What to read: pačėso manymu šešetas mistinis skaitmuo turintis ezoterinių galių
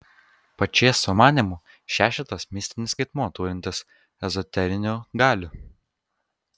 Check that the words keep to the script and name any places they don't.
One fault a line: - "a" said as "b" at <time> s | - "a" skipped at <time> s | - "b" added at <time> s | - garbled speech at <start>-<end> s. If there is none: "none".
none